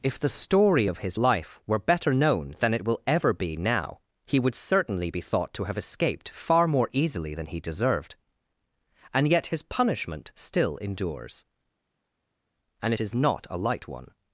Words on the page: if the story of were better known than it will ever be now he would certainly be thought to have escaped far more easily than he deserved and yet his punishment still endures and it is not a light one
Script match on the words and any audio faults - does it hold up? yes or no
no